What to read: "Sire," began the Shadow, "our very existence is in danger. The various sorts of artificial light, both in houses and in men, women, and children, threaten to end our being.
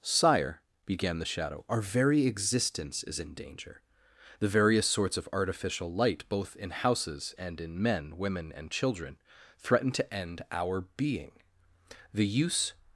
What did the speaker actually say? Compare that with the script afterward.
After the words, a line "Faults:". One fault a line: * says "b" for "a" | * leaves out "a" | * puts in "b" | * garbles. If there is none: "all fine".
"Sire," began the Shadow, "our very existence is in danger. The various sorts of artificial light, both in houses and in men, women, and children, threaten to end our being. The use
Faults:
* puts in "The use"